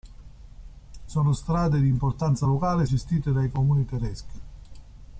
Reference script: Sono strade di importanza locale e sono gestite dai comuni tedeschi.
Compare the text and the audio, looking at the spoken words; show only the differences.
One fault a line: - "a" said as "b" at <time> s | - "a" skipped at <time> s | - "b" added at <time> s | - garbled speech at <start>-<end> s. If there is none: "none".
- "sono" skipped at 2.9 s